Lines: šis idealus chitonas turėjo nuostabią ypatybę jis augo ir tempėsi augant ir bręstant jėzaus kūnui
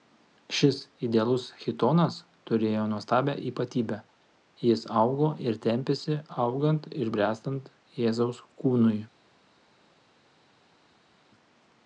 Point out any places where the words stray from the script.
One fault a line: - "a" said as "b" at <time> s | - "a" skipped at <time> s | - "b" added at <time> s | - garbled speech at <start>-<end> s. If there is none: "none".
none